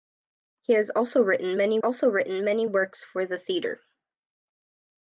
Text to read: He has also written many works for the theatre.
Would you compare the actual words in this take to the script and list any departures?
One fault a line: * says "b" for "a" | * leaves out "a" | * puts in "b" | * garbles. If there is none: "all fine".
* puts in "also written many"